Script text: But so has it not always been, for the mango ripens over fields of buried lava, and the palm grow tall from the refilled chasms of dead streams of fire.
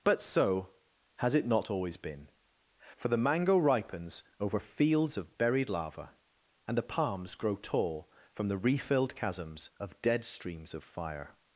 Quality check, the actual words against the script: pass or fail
fail